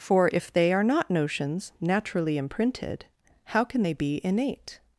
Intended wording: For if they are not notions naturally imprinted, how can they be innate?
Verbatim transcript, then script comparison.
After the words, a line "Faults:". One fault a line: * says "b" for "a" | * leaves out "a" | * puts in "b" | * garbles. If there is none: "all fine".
For if they are not notions naturally imprinted, how can they be innate?
Faults:
all fine